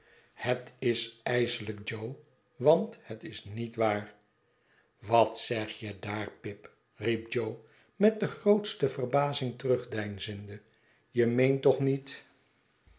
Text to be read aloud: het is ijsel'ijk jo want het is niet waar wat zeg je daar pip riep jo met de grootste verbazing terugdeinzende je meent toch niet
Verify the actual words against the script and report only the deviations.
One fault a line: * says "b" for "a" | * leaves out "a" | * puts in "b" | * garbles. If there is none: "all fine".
all fine